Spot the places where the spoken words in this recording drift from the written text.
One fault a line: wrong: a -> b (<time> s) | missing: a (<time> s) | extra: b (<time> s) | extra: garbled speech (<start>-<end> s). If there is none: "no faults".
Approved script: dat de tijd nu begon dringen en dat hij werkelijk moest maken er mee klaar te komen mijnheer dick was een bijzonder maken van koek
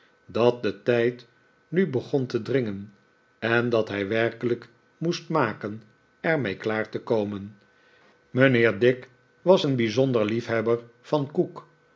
extra: te (2.2 s)
wrong: maken -> liefhebber (10.3 s)